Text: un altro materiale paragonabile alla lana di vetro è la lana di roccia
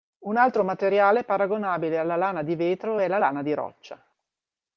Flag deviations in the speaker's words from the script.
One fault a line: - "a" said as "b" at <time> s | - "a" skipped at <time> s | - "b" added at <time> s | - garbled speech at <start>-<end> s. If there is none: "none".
none